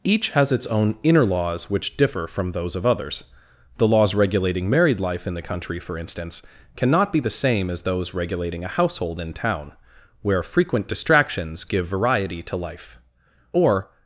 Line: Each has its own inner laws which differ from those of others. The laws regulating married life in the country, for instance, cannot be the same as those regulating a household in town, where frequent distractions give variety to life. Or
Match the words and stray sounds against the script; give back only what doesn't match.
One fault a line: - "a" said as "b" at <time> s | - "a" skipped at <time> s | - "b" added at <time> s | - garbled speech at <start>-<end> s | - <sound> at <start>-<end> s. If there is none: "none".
none